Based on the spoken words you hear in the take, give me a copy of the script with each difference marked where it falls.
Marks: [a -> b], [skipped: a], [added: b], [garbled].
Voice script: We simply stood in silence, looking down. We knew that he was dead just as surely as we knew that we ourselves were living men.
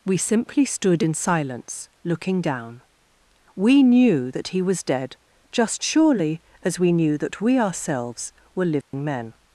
We simply stood in silence, looking down. We knew that he was dead just [skipped: as] surely as we knew that we ourselves were living men.